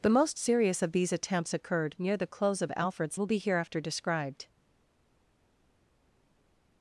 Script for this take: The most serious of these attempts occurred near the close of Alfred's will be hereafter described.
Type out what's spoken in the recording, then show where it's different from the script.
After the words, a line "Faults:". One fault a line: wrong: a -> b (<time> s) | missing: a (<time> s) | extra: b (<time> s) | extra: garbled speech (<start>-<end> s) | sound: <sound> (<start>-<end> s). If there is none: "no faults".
The most serious of these attempts occurred near the close of Alfred's will be hereafter described.
Faults:
no faults